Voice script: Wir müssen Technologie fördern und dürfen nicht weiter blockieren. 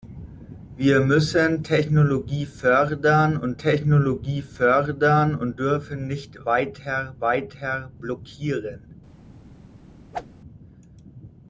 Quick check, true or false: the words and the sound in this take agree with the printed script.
false